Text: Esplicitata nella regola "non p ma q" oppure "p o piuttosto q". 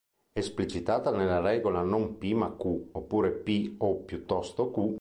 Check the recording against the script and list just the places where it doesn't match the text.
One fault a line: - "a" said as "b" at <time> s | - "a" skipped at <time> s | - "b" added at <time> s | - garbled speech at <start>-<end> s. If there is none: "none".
none